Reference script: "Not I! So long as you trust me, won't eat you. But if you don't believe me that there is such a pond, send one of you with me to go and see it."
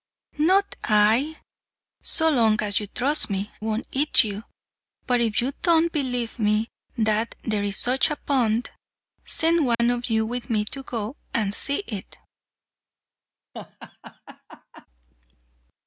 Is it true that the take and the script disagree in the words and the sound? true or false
true